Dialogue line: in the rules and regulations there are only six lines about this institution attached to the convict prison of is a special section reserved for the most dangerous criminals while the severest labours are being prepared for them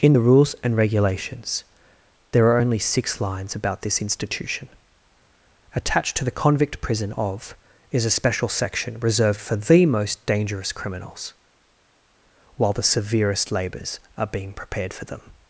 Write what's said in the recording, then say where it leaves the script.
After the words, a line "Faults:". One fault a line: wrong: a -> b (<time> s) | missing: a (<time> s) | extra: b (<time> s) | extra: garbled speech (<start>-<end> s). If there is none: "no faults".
in the rules and regulations there are only six lines about this institution attached to the convict prison of is a special section reserved for the most dangerous criminals while the severest labours are being prepared for them
Faults:
no faults